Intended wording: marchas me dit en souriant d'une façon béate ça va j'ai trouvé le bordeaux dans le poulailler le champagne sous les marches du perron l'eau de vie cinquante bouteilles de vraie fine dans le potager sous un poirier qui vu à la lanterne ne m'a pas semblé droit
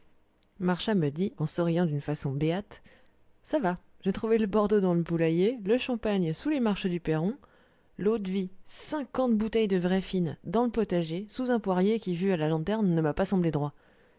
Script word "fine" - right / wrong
right